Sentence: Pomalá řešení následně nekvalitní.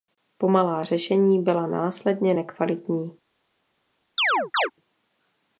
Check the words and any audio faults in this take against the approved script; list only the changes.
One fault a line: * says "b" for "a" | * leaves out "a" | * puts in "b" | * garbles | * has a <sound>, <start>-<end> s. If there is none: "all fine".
* puts in "byla"
* has a chirp, 4.2-4.7 s